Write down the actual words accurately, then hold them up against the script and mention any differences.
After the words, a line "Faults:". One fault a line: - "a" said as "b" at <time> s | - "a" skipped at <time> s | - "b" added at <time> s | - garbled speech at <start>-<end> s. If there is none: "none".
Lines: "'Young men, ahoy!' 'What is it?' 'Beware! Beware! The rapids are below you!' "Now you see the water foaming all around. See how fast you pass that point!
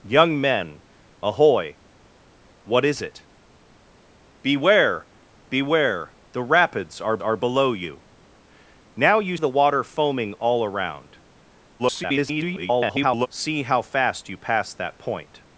"'Young men, ahoy!' 'What is it?' 'Beware! Beware! The rapids are are below you!' "Now you the water foaming all around. [garbled] See how fast you pass that point!
Faults:
- "are" added at 7.2 s
- "see" skipped at 9.4 s
- garbled speech at 11.8-13.3 s